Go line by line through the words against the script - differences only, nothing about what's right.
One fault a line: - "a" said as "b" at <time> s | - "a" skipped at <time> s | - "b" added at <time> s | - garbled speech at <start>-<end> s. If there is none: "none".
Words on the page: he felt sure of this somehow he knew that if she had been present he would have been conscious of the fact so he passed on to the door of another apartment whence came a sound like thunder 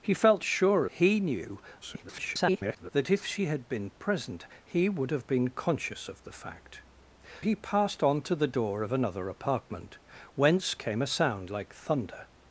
- "of this somehow" skipped at 0.8 s
- garbled speech at 1.8-2.9 s
- "so" skipped at 6.8 s